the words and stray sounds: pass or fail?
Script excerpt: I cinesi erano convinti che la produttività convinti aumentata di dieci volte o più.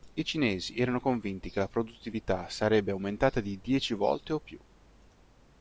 fail